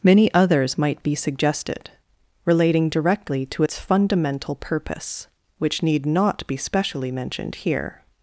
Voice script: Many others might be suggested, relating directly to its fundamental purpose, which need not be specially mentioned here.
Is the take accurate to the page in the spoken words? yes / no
yes